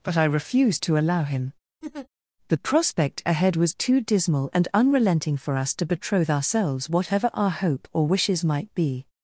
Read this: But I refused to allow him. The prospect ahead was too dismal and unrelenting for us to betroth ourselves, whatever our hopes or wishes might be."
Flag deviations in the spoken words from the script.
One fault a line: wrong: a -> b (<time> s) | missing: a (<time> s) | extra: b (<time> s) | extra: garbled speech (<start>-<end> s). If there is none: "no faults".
wrong: hopes -> hope (7.5 s)